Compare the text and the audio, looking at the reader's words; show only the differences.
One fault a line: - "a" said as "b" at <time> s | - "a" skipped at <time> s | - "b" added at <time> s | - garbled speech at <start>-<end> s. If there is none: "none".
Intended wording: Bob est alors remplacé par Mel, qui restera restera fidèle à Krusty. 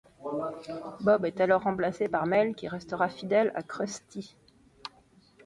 - "restera" skipped at 3.1 s